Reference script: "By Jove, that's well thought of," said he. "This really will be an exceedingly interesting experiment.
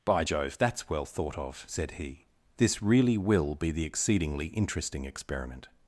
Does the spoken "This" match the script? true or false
true